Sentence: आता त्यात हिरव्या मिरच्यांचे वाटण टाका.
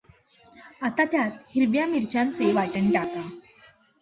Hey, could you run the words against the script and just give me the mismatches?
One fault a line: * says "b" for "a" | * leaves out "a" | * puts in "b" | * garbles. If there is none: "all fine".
all fine